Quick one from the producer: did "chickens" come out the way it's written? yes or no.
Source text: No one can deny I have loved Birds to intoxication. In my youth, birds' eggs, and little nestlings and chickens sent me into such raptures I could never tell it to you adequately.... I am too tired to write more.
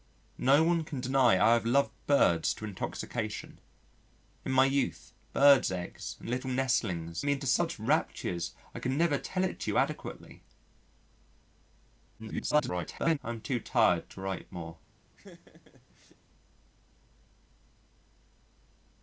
no